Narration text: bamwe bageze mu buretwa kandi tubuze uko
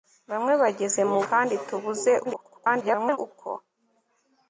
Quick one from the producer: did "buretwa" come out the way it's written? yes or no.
no